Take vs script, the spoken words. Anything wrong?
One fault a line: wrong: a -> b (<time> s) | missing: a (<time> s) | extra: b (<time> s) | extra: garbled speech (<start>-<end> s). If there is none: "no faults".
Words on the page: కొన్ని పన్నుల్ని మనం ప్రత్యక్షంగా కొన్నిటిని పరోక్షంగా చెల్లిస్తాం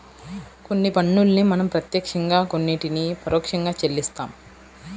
no faults